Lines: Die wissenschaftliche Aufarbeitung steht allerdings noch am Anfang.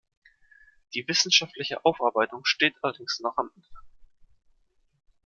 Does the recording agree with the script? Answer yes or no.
yes